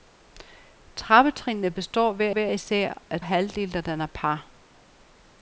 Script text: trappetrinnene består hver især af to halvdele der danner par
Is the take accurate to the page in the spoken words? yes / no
no